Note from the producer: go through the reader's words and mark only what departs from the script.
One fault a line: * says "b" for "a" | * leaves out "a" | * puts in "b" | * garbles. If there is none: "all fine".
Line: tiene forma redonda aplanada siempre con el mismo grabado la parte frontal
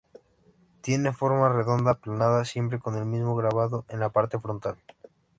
* puts in "en"